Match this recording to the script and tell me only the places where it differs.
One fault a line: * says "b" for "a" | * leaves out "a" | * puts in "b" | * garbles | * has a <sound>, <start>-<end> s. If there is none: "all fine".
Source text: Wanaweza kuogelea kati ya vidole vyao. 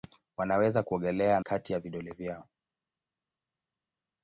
all fine